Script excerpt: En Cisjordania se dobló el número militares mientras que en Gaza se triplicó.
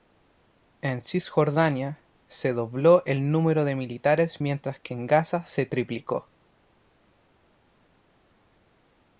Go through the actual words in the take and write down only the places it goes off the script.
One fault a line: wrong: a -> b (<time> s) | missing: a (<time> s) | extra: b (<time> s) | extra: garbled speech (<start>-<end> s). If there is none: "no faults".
extra: de (3.6 s)